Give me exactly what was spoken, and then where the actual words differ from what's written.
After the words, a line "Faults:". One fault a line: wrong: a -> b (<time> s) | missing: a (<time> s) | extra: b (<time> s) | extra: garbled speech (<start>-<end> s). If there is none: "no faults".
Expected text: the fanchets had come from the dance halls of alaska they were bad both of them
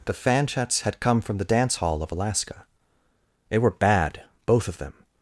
the fanchets had come from the dance hall of alaska they were bad both of them
Faults:
wrong: halls -> hall (1.7 s)